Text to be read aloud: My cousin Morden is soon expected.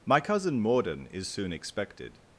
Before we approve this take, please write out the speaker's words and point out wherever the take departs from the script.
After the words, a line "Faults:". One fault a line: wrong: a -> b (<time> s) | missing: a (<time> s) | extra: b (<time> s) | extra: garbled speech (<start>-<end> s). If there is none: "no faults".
My cousin Morden is soon expected.
Faults:
no faults